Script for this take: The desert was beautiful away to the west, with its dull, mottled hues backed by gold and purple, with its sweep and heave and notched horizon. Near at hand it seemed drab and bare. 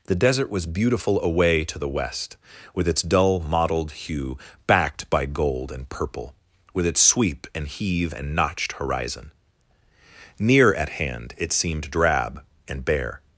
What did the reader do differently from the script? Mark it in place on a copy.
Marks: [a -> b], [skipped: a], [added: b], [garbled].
The desert was beautiful away to the west, with its dull, mottled [hues -> hue] backed by gold and purple, with its sweep and heave and notched horizon. Near at hand it seemed drab and bare.